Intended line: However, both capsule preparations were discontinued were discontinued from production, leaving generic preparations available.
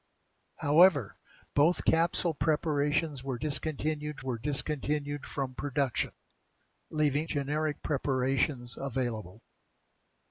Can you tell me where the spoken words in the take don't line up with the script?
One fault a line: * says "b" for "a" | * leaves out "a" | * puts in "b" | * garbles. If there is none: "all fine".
all fine